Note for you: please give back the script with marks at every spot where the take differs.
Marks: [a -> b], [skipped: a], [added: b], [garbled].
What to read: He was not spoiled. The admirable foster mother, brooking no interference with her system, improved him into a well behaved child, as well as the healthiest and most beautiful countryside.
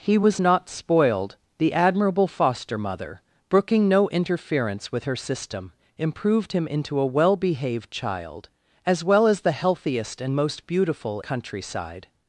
He was not spoiled. The admirable foster mother, brooking no interference with her system, improved him into a well behaved child, as well as the healthiest and most beautiful countryside.